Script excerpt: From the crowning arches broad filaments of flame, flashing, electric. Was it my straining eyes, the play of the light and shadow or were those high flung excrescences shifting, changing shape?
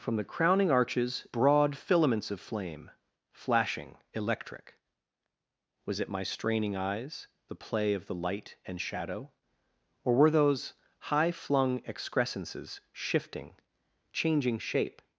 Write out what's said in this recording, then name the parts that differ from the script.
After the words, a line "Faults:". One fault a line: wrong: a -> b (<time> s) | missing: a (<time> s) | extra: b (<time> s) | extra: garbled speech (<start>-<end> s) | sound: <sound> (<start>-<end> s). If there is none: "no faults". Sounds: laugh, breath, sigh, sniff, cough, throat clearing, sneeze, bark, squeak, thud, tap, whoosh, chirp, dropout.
From the crowning arches broad filaments of flame, flashing, electric. Was it my straining eyes, the play of the light and shadow or were those high flung excrescences shifting, changing shape?
Faults:
no faults